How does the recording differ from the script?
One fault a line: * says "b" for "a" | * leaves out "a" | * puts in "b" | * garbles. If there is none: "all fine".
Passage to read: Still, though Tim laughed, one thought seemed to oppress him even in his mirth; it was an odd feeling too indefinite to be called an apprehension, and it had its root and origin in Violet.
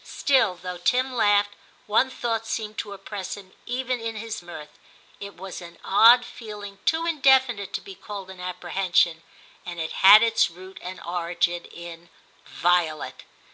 all fine